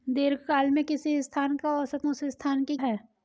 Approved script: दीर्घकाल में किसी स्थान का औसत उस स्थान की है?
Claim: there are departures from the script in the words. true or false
false